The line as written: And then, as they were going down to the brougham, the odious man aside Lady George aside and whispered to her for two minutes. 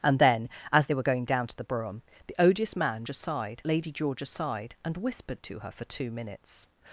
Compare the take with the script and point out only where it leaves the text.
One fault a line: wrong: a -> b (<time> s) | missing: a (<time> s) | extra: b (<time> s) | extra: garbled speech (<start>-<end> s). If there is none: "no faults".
no faults